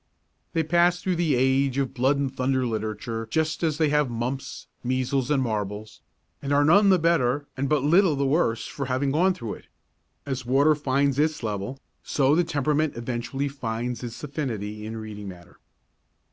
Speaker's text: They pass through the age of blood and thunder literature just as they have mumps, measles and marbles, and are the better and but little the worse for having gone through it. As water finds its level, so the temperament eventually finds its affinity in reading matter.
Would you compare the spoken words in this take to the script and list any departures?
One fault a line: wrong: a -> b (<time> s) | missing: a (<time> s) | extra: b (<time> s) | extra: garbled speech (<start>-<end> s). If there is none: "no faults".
extra: none (6.7 s)